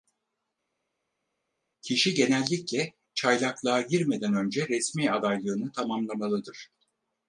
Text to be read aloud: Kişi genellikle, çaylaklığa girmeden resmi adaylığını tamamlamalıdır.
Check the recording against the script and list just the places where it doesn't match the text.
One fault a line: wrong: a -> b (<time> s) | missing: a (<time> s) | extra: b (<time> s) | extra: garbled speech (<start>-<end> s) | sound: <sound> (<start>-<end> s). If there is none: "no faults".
extra: önce (4.3 s)